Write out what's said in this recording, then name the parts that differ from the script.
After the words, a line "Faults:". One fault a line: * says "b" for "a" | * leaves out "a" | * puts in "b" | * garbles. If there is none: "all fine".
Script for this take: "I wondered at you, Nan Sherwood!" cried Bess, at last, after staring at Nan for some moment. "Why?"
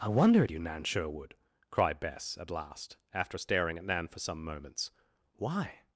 "I wonder at you, Nan Sherwood!" cried Bess, at last, after staring at Nan for some moments. "Why?"
Faults:
* says "wonder" for "wondered"
* says "moments" for "moment"